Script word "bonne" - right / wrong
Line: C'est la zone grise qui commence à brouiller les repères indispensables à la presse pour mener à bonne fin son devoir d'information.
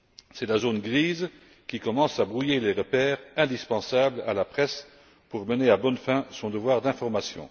right